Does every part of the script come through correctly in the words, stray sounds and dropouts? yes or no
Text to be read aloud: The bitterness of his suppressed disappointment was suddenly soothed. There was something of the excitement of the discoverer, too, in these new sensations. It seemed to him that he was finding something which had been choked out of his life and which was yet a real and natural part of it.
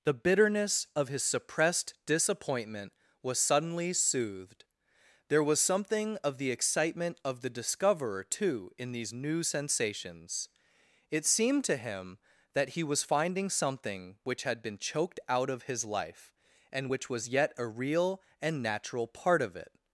yes